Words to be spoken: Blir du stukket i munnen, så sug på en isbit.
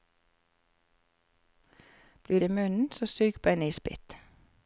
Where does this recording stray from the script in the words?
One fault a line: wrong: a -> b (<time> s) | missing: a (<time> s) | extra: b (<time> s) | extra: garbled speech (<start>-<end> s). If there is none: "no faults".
missing: du stukket (2.4 s)